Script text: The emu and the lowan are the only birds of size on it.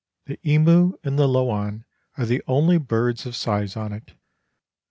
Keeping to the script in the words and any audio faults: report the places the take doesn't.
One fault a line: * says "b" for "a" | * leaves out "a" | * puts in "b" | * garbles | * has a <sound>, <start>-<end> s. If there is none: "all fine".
all fine